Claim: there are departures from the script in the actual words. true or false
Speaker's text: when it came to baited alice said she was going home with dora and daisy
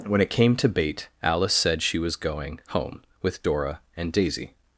true